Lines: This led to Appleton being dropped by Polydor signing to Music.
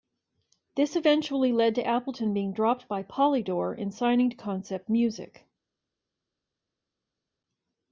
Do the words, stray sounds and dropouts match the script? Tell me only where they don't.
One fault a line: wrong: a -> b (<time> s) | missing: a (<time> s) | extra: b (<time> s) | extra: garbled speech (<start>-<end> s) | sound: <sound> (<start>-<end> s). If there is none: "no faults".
extra: eventually (0.9 s)
extra: and (3.8 s)
extra: Concept (4.3 s)